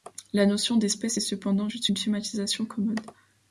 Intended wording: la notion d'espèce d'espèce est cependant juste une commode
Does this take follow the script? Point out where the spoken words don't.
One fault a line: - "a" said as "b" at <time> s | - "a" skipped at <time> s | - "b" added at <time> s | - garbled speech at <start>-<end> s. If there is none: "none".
- "d'espèce" skipped at 1.2 s
- "schématisation" added at 2.0 s